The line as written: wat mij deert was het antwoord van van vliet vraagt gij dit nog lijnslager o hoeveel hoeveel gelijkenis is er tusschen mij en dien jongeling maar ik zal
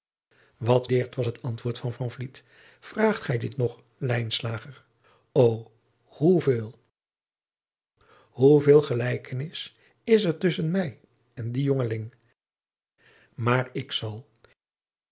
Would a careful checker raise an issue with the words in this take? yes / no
yes